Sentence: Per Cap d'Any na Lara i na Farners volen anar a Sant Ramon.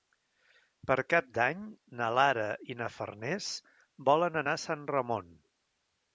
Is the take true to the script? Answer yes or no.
yes